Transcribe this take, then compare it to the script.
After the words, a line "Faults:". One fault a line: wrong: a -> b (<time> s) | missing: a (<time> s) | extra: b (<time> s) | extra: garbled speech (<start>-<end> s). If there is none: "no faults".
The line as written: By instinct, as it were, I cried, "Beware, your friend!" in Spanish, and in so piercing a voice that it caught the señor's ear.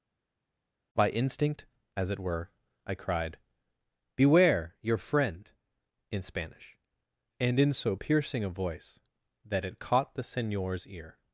By instinct, as it were, I cried, "Beware, your friend!" in Spanish, and in so piercing a voice that it caught the señor's ear.
Faults:
no faults